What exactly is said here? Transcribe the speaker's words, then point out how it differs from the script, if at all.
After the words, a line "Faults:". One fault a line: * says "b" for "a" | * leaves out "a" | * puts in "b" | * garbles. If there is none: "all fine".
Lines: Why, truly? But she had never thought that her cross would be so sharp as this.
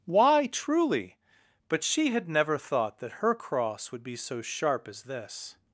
Why, truly? But she had never thought that her cross would be so sharp as this.
Faults:
all fine